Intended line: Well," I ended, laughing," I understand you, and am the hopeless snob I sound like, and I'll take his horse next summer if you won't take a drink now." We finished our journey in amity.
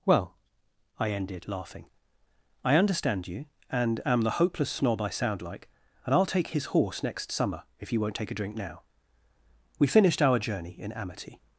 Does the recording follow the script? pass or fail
pass